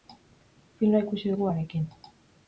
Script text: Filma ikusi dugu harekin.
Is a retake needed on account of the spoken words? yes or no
no